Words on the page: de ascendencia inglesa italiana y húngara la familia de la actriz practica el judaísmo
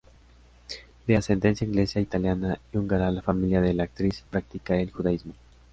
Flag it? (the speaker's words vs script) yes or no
no